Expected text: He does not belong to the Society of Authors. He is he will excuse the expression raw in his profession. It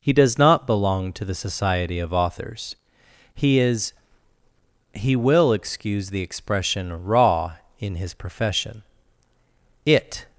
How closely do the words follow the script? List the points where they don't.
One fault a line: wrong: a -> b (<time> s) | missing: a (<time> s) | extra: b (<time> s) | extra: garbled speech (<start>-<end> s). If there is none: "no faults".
no faults